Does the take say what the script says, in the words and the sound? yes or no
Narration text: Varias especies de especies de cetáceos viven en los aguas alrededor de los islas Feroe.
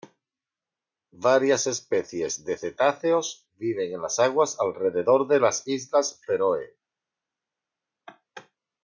no